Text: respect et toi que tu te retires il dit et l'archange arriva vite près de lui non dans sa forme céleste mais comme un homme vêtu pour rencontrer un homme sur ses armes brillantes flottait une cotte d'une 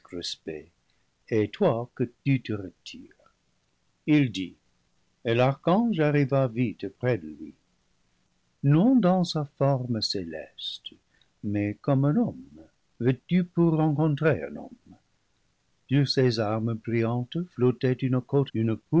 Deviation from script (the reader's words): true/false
false